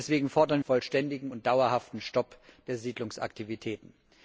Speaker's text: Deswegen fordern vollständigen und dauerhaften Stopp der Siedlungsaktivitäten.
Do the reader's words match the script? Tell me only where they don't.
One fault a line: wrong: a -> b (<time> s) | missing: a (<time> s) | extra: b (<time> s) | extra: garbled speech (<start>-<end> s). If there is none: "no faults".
no faults